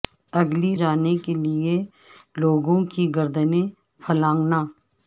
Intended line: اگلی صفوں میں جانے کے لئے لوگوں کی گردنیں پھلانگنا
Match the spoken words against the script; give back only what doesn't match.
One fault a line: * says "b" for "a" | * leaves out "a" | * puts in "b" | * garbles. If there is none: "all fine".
* leaves out "صفوں میں"